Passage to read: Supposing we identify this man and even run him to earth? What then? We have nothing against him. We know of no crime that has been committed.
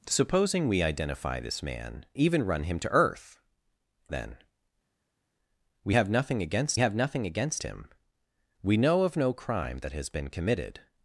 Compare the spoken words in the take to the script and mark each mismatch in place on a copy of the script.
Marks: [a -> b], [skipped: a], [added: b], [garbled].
Supposing we identify this man [skipped: and] even run him to earth? [skipped: What] then? We have nothing against [added: have nothing against] him. We know of no crime that has been committed.